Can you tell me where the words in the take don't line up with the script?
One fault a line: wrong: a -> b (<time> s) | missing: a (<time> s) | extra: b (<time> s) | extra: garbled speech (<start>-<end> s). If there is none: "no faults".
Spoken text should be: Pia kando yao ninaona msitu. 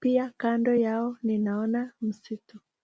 no faults